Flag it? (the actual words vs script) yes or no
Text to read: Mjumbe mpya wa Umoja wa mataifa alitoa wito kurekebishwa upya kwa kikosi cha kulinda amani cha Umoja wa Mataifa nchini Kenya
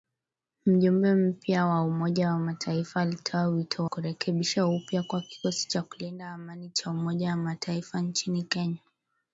no